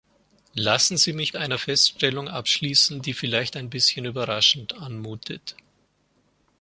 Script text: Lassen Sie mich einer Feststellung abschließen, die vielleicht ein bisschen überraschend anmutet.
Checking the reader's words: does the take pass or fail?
pass